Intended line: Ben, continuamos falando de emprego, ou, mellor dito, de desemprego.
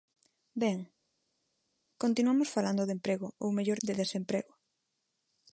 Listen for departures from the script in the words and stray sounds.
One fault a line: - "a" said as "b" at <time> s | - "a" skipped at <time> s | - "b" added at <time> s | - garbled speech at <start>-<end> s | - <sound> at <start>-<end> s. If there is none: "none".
- "dito" skipped at 3.8 s